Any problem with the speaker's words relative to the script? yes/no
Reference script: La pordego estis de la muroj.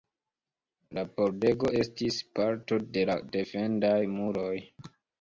yes